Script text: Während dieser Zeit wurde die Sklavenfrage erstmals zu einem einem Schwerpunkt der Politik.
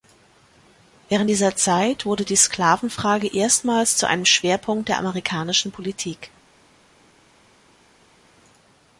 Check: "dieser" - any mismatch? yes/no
no